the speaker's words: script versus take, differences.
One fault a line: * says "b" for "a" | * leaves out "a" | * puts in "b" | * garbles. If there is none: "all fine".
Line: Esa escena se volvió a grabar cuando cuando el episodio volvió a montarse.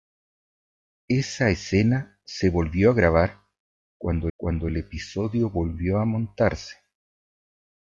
all fine